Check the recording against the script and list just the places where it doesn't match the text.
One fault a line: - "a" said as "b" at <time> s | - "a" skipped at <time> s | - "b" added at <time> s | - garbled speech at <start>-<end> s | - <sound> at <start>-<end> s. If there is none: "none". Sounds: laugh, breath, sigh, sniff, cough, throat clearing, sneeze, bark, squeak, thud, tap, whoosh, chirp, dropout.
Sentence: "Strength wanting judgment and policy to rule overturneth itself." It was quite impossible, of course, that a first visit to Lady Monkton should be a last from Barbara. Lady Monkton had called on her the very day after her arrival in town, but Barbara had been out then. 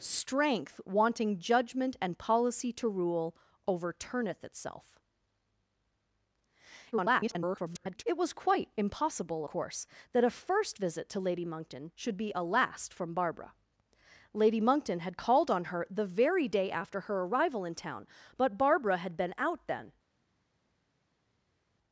- garbled speech at 6.9-8.0 s
- "of" skipped at 9.4 s